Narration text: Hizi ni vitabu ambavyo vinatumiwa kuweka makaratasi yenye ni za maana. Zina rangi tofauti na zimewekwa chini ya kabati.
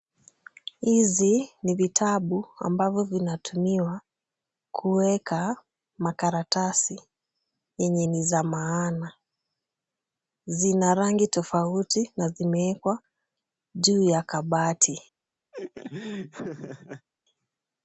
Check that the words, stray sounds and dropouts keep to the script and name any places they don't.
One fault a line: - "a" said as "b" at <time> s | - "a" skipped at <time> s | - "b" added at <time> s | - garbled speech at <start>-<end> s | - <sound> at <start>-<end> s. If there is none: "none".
- "chini" said as "juu" at 13.8 s
- laugh at 15.5-17.1 s